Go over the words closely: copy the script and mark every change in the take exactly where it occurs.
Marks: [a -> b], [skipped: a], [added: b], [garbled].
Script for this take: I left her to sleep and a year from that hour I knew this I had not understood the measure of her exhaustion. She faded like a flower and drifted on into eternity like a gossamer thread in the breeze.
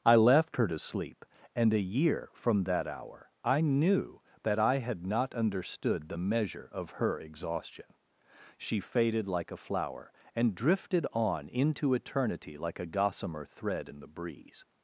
I left her to sleep and a year from that hour I knew [this -> that] I had not understood the measure of her exhaustion. She faded like a flower and drifted on into eternity like a gossamer thread in the breeze.